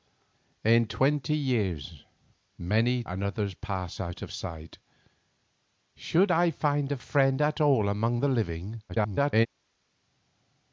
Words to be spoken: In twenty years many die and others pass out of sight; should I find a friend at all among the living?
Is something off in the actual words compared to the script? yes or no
yes